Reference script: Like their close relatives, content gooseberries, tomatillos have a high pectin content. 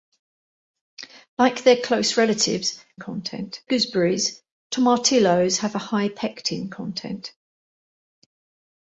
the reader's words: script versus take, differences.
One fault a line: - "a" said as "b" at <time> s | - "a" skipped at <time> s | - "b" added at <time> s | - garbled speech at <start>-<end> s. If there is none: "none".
none